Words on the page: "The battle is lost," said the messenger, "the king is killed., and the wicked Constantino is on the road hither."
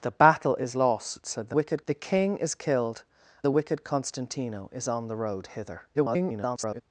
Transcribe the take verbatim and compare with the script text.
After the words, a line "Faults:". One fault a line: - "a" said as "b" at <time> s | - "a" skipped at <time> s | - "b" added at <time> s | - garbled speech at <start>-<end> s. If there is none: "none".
"The battle is lost," said the wicked, "the king is killed., the wicked Constantino is on the road hither." [garbled]
Faults:
- "messenger" said as "wicked" at 1.5 s
- "and" skipped at 3.0 s
- garbled speech at 5.9-6.8 s